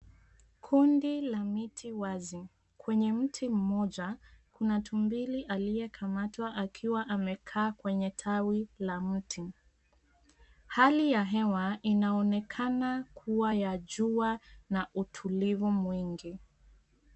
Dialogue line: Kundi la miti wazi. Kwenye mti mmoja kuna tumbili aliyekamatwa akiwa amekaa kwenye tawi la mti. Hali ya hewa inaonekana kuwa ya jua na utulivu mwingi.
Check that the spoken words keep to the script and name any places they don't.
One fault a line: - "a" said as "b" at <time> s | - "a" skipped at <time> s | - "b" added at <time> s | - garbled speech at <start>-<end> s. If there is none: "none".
none